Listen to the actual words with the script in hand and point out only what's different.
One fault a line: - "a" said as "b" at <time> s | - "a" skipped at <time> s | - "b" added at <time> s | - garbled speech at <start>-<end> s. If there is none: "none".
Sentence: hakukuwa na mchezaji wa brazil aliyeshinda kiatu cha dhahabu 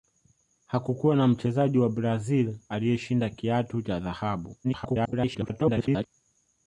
- garbled speech at 4.6-6.1 s